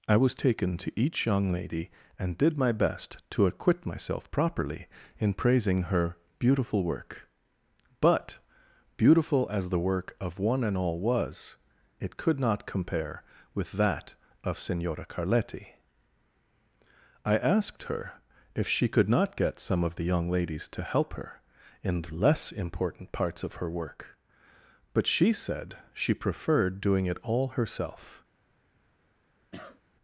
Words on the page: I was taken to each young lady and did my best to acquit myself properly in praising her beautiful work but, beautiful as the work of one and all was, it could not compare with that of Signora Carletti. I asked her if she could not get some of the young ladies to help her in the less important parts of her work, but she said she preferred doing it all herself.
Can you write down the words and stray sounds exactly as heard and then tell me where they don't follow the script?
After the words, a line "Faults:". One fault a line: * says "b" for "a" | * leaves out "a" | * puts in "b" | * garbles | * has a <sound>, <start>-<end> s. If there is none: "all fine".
I was taken to each young lady and did my best to acquit myself properly in praising her beautiful work but, beautiful as the work of one and all was, it could not compare with that of Signora Carletti. I asked her if she could not get some of the young ladies to help her in the less important parts of her work, but she said she preferred doing it all herself.
Faults:
* has a cough, 29.5-29.8 s